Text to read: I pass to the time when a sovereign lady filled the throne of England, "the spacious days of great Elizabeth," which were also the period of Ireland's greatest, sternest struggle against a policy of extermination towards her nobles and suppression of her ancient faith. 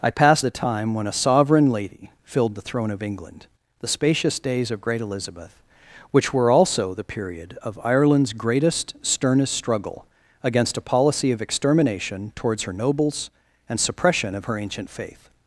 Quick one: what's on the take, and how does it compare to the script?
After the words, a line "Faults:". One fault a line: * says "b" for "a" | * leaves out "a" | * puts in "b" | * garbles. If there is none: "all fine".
I pass the time when a sovereign lady filled the throne of England, "the spacious days of great Elizabeth," which were also the period of Ireland's greatest, sternest struggle against a policy of extermination towards her nobles and suppression of her ancient faith.
Faults:
* leaves out "to"